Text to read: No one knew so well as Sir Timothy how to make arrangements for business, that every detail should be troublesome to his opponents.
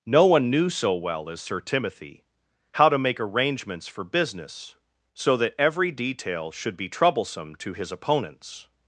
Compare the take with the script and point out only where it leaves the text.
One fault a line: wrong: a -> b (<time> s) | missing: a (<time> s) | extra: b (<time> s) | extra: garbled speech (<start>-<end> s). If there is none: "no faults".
extra: so (5.1 s)